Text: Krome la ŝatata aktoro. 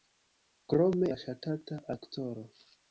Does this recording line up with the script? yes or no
yes